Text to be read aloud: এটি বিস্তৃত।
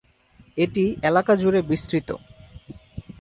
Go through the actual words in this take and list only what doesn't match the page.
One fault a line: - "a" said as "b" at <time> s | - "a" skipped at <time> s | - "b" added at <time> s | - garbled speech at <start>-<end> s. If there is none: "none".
- "এলাকা জুড়ে" added at 1.0 s